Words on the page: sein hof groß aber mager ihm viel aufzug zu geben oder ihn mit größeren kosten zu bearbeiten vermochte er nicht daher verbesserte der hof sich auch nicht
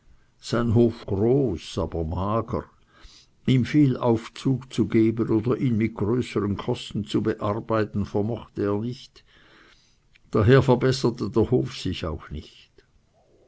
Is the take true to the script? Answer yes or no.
yes